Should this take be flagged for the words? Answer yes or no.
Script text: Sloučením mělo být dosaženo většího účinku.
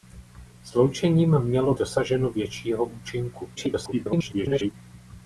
yes